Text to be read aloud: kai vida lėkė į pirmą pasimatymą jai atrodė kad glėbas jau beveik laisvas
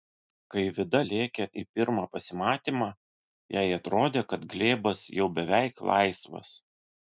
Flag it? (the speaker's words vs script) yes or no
no